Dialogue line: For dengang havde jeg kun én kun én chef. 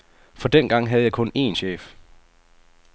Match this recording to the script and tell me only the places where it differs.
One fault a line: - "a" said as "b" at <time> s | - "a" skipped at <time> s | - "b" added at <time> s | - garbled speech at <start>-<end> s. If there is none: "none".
- "kun én" skipped at 1.6 s